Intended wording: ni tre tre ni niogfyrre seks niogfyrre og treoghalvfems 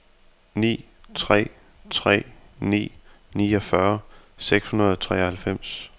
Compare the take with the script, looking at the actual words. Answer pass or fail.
fail